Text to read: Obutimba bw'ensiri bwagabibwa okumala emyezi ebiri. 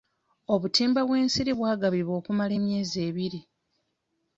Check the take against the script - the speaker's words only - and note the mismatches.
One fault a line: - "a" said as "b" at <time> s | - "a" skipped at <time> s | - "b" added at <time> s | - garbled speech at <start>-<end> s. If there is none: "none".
none